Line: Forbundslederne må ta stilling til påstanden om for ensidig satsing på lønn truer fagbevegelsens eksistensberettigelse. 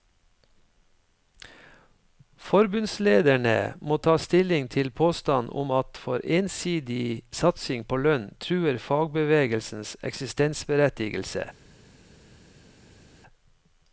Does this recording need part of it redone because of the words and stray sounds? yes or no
yes